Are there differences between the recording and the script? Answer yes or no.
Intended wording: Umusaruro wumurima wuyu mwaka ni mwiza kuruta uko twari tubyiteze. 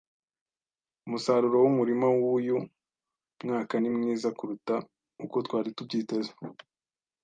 no